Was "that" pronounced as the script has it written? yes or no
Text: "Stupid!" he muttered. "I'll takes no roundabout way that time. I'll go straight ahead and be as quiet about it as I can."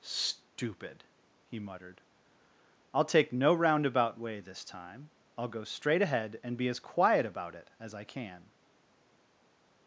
no